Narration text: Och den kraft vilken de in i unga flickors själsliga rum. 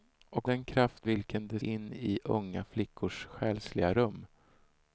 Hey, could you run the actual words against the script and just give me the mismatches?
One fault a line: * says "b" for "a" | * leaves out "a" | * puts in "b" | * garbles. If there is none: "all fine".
all fine